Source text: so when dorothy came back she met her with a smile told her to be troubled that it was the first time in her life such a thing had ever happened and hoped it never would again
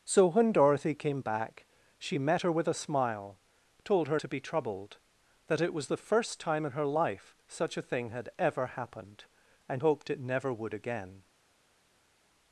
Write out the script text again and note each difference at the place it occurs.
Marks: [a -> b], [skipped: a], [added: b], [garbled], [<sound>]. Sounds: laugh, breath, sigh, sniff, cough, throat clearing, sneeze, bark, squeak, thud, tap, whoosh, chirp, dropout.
so when dorothy came back she met her with a smile told her to be troubled that it was the first time in her life such a thing had ever happened and hoped it never would again